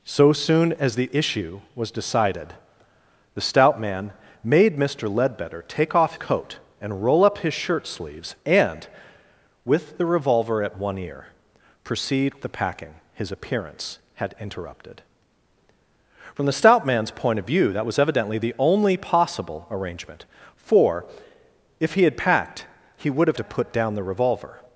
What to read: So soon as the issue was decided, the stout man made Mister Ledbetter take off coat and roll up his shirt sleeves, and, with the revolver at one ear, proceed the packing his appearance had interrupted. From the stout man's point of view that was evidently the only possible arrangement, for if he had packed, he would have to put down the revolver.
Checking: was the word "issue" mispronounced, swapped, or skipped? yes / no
no